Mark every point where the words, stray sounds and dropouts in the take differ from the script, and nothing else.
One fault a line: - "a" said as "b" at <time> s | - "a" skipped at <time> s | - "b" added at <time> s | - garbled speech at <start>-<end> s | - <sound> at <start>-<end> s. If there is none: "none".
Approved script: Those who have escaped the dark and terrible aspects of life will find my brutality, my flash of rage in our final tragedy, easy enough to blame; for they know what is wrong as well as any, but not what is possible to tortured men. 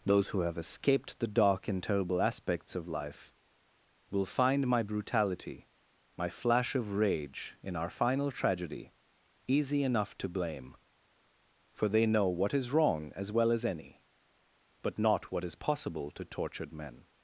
none